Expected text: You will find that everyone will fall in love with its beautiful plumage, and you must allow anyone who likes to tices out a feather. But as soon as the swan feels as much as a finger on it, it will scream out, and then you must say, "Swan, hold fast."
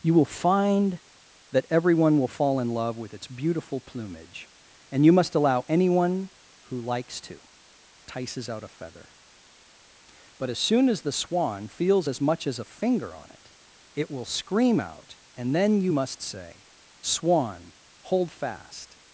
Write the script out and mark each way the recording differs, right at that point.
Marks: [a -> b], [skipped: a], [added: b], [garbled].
You will find that everyone will fall in love with its beautiful plumage, and you must allow anyone who likes to tices out a feather. But as soon as the swan feels as much as a finger on it, it will scream out, and then you must say, "Swan, hold fast."